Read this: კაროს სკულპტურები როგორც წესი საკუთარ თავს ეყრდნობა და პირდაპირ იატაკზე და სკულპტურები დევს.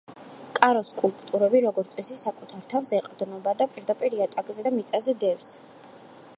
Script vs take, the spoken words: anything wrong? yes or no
yes